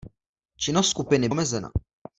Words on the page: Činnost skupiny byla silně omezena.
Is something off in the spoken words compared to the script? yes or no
yes